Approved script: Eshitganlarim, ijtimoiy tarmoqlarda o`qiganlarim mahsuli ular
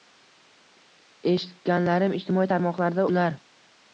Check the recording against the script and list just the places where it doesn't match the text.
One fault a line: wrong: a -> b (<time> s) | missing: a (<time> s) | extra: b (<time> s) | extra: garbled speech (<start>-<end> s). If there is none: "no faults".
missing: o`qiganlarim mahsuli (3.0 s)